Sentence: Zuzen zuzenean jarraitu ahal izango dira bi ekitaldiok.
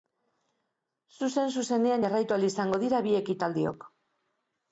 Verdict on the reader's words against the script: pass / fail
pass